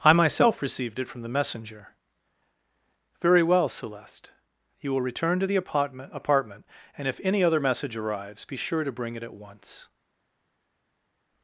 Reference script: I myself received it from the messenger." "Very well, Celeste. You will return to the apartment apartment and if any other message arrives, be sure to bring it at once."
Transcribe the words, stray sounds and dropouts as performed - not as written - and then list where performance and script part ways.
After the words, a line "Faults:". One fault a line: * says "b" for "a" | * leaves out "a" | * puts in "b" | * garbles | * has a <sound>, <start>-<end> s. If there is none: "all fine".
I myself received it from the messenger." "Very well, Celeste. You will return to the apartment apartment and if any other message arrives, be sure to bring it at once."
Faults:
all fine